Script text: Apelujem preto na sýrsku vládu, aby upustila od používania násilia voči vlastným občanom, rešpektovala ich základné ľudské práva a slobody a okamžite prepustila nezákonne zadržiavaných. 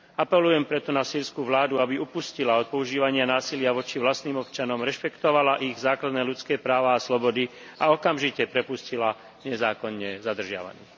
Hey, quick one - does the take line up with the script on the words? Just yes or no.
yes